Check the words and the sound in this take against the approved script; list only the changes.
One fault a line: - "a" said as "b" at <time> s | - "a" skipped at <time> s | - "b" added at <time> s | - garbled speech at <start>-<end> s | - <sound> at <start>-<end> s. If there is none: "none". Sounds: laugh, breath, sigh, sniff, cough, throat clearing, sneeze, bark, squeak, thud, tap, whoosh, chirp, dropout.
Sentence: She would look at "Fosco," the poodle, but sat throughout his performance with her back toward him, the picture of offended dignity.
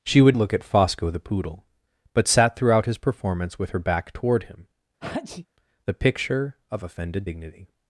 - sneeze at 5.0-5.5 s